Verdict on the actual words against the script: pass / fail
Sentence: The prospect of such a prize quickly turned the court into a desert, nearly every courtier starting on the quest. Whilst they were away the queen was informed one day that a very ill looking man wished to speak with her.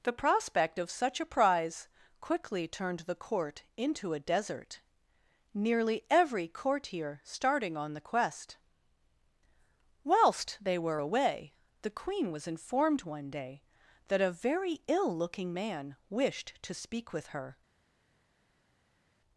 pass